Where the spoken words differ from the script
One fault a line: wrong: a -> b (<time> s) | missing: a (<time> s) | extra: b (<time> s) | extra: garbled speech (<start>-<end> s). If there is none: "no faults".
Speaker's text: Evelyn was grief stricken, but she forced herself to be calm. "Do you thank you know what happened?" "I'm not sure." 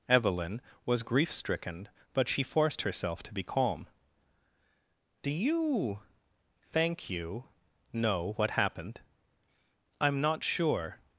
no faults